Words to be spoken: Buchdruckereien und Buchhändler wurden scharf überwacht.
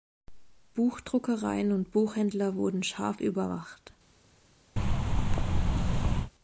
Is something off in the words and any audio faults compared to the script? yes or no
yes